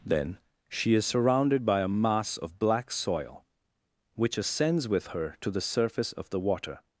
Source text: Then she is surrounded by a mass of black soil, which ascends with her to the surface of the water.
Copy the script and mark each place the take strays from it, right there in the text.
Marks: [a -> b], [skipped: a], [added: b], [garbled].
Then she is surrounded by a mass of black soil, which ascends with her to the surface of the water.